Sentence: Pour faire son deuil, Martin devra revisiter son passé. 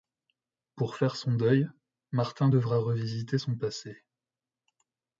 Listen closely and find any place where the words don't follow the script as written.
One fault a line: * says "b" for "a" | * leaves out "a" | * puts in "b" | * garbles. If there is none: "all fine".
all fine